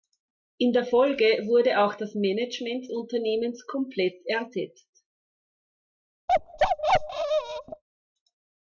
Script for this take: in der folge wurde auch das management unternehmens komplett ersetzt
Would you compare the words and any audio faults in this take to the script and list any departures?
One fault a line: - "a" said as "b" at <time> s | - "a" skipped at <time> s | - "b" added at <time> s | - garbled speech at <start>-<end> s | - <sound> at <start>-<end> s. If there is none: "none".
- bark at 6.3-7.8 s